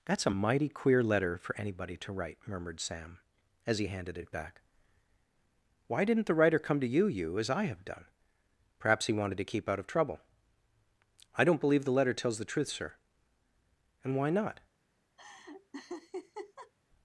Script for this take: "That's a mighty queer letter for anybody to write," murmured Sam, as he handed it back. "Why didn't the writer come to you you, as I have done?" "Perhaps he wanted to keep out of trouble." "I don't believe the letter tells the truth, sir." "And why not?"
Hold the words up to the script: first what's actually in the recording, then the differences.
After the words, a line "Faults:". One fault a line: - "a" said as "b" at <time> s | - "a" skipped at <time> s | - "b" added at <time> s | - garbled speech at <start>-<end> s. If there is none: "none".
"That's a mighty queer letter for anybody to write," murmured Sam, as he handed it back. "Why didn't the writer come to you you, as I have done?" "Perhaps he wanted to keep out of trouble." "I don't believe the letter tells the truth, sir." "And why not?"
Faults:
none